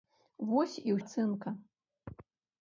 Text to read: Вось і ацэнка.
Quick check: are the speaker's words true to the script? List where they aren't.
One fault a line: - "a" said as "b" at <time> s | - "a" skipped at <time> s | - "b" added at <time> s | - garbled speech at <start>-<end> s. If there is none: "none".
none